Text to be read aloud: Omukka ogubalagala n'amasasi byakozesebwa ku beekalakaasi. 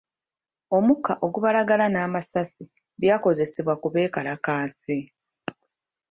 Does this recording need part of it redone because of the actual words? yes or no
no